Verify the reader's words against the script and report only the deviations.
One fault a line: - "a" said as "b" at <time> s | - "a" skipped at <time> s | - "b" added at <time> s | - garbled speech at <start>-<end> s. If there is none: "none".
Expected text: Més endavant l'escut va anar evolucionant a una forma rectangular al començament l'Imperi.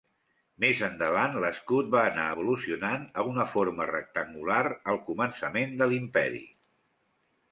- "de" added at 5.8 s